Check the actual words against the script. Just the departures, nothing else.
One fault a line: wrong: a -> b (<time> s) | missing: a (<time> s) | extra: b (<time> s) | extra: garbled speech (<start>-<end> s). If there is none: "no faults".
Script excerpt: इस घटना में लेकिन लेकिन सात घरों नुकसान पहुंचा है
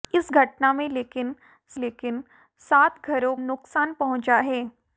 no faults